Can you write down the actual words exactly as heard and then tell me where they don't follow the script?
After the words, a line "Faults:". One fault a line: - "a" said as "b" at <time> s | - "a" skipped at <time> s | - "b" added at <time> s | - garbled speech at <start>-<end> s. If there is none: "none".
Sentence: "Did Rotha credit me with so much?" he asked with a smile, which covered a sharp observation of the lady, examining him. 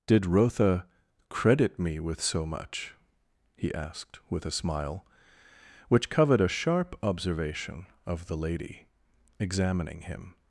"Did Rotha credit me with so much?" he asked with a smile, which covered a sharp observation of the lady, examining him.
Faults:
none